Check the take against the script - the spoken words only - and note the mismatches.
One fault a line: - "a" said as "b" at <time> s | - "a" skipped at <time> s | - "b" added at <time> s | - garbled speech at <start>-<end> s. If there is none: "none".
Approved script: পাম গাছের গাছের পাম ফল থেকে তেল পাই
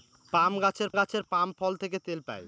none